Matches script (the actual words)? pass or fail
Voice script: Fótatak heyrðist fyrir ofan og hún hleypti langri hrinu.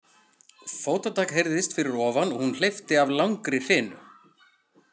fail